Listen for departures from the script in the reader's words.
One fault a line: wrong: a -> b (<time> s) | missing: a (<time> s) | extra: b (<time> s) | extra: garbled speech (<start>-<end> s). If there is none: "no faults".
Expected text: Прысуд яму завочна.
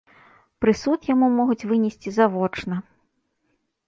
extra: могуць вынесці (1.4 s)